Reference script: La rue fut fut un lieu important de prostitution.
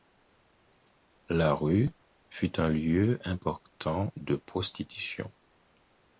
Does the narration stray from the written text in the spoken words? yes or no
yes